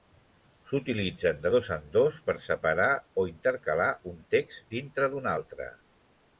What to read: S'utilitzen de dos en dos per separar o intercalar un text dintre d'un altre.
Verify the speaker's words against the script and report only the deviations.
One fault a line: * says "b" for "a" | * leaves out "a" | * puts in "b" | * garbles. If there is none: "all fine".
all fine